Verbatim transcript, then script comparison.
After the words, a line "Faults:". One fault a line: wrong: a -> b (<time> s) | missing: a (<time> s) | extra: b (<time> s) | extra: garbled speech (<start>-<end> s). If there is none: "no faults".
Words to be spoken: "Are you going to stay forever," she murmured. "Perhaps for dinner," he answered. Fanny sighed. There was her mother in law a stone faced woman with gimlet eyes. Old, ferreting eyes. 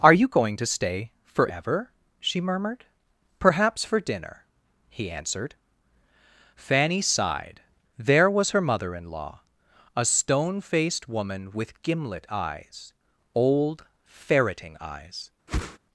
"Are you going to stay forever," she murmured. "Perhaps for dinner," he answered. Fanny sighed. There was her mother in law a stone faced woman with gimlet eyes. Old, ferreting eyes.
Faults:
no faults